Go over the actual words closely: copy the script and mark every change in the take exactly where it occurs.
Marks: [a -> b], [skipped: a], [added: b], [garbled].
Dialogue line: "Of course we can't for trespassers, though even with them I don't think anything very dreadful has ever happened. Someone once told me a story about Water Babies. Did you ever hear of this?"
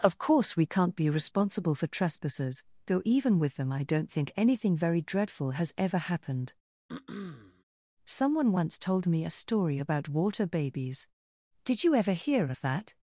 "Of course we can't [added: be responsible] for trespassers, though even with them I don't think anything very dreadful has ever happened. Someone once told me a story about Water Babies. Did you ever hear of [this?" -> that]